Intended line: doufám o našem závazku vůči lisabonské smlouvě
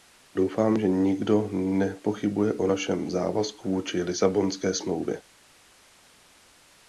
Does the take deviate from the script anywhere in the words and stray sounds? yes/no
yes